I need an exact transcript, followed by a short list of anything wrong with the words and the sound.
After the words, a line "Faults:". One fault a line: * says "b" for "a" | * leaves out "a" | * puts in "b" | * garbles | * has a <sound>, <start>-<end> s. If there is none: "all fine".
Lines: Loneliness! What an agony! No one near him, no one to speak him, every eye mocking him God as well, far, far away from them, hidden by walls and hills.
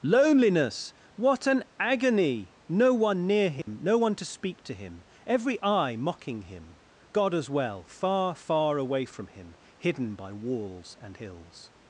Loneliness! What an agony! No one near him, no one to speak to him, every eye mocking him God as well, far, far away from him, hidden by walls and hills.
Faults:
* has a dropout, 3.6-3.7 s
* puts in "to"
* says "him" for "them"